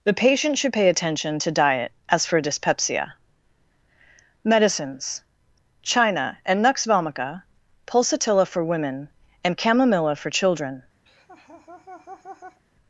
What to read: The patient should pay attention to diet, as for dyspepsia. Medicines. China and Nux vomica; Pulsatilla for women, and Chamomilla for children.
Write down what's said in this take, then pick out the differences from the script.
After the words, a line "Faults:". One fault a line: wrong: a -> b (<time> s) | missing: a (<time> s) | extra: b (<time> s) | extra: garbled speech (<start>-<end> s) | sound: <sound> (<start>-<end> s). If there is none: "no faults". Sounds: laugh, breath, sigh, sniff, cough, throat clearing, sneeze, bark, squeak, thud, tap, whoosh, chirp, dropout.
The patient should pay attention to diet, as for dyspepsia. Medicines. China and Nux vomica; Pulsatilla for women, and Chamomilla for children.
Faults:
sound: laugh (11.1-12.6 s)